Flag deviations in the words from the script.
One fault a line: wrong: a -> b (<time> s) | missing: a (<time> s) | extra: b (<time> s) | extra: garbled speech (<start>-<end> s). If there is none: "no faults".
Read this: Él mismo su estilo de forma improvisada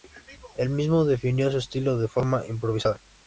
extra: definió (1.1 s)